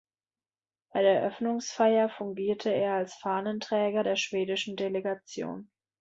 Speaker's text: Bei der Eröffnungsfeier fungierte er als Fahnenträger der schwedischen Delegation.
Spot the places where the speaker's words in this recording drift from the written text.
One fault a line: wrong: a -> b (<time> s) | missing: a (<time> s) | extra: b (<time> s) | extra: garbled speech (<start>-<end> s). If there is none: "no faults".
no faults